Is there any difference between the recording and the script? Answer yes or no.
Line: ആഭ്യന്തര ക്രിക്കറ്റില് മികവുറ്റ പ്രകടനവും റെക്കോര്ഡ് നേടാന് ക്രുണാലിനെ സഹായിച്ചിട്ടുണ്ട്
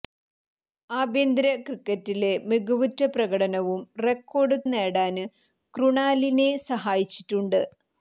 no